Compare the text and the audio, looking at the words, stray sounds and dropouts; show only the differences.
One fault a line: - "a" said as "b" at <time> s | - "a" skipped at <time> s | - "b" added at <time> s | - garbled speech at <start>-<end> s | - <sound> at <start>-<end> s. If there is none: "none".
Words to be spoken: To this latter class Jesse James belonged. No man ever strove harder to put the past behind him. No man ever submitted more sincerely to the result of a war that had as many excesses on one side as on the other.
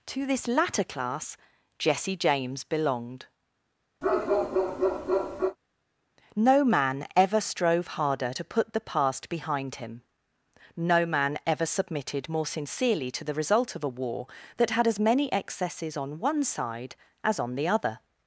- bark at 4.0-5.6 s